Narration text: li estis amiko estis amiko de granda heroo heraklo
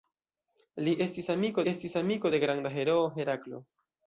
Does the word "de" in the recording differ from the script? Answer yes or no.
no